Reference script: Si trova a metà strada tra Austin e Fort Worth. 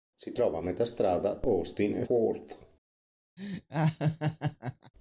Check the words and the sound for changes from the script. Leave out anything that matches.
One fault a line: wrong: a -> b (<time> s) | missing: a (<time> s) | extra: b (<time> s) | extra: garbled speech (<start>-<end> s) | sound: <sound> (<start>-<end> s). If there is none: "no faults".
missing: tra (1.4 s)
missing: Fort (2.0 s)
sound: laugh (3.4-4.9 s)